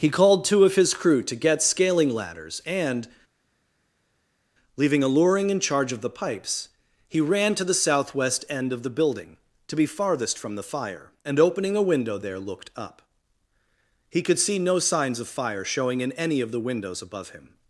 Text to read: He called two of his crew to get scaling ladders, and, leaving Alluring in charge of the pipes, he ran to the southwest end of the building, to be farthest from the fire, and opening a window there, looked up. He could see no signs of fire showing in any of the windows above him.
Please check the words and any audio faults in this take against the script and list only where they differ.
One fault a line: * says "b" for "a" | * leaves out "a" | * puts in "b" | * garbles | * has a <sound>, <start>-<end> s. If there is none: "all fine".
all fine